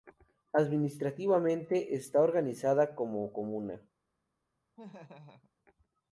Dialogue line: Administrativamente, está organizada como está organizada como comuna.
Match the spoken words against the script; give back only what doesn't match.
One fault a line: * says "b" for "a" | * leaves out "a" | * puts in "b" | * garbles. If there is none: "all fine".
* leaves out "está organizada como"